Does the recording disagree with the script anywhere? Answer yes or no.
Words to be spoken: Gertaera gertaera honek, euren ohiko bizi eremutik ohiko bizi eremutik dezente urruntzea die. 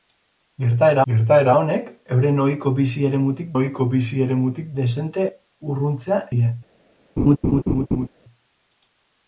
no